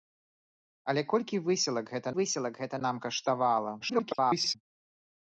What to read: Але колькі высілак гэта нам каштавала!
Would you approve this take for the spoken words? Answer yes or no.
no